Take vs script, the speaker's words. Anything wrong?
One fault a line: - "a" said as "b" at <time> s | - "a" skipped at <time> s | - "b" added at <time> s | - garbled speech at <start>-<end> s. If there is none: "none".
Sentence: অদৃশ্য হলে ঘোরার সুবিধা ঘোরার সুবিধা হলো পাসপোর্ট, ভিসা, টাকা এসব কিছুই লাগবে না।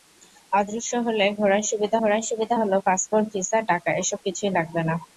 none